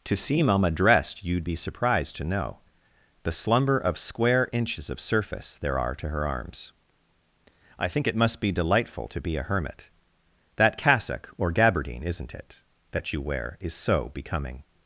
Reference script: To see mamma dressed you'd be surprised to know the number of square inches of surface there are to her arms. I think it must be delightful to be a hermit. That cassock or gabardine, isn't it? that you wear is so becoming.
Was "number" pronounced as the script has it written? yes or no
no